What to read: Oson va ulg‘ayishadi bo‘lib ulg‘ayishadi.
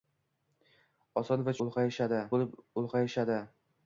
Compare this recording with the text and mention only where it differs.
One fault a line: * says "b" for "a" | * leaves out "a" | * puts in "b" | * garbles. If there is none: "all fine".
all fine